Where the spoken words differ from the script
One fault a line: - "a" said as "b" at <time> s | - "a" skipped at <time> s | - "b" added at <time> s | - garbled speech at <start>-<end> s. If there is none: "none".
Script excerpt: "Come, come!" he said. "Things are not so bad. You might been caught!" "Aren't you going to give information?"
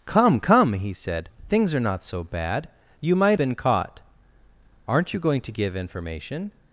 none